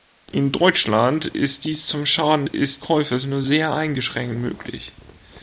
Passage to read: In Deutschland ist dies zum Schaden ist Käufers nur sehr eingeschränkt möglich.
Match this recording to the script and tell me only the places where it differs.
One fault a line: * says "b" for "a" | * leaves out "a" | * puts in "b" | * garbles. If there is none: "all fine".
all fine